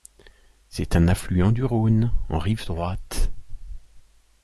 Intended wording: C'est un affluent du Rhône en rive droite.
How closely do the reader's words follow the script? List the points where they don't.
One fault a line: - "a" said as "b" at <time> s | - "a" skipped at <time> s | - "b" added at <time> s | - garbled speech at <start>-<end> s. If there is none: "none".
none